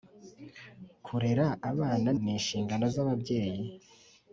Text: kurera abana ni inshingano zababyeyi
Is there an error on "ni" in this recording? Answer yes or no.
no